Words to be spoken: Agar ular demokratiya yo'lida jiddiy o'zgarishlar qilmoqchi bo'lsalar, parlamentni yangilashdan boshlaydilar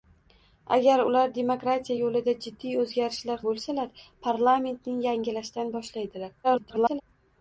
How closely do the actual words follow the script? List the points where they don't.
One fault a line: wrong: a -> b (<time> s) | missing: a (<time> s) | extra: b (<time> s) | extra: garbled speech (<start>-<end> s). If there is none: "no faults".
missing: qilmoqchi (3.4 s)
extra: garbled speech (6.4-7.0 s)